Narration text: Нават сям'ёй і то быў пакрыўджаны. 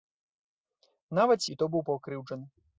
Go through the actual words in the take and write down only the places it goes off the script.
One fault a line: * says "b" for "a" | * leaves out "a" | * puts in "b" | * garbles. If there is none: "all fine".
* leaves out "сям'ёй"